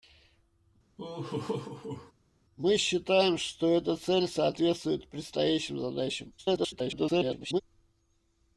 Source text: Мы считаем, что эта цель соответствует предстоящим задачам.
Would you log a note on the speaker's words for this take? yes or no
yes